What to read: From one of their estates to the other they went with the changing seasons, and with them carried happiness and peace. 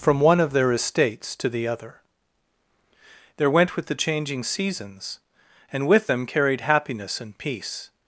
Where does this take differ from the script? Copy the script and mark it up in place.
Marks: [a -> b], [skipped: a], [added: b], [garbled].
From one of their estates to the other [they -> there] went with the changing seasons, and with them carried happiness and peace.